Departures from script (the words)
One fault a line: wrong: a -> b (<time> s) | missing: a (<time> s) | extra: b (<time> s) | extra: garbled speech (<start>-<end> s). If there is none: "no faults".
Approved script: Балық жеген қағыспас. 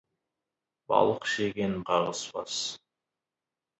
no faults